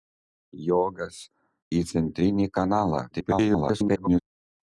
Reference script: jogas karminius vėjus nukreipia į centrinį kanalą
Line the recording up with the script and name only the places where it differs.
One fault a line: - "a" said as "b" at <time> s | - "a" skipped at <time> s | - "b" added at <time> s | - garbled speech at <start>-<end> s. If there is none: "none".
- "karminius vėjus nukreipia" skipped at 1.2 s
- garbled speech at 3.1-4.2 s